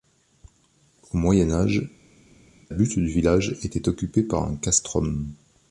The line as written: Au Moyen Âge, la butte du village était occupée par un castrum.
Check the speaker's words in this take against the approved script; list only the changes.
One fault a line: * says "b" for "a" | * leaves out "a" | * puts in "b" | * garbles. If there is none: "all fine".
* leaves out "la"